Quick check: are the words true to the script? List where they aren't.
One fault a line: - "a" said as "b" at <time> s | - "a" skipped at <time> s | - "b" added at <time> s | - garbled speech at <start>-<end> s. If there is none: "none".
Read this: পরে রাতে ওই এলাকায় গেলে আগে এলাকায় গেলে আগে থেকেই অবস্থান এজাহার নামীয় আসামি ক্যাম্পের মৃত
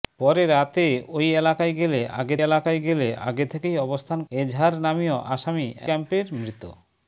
none